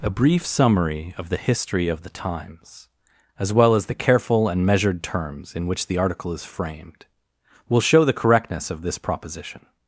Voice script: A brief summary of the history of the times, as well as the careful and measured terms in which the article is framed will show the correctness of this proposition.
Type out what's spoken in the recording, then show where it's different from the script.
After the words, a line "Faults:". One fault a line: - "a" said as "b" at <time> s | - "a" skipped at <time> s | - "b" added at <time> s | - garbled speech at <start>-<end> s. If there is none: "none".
A brief summary of the history of the times, as well as the careful and measured terms in which the article is framed will show the correctness of this proposition.
Faults:
none